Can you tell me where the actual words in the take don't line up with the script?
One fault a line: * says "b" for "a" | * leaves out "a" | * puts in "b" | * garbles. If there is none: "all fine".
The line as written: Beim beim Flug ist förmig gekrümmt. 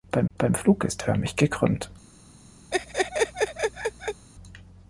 all fine